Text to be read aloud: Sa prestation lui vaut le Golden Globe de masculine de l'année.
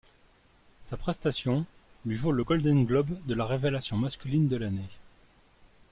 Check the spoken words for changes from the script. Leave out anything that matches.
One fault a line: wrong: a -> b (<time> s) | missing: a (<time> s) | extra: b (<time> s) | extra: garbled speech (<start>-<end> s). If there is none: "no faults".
extra: la révélation (3.3 s)